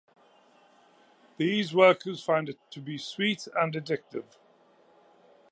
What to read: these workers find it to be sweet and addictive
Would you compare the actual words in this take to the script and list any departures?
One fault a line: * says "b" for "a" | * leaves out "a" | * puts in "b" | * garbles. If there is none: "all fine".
all fine